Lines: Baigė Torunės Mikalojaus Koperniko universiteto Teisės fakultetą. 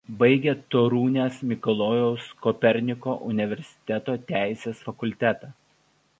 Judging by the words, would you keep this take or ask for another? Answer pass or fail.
pass